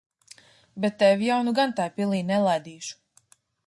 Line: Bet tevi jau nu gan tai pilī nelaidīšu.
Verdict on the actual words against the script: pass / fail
pass